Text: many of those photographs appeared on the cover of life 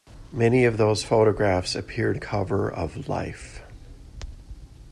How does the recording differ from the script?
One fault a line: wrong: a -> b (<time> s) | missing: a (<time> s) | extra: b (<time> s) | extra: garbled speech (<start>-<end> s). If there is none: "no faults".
missing: on (2.2 s)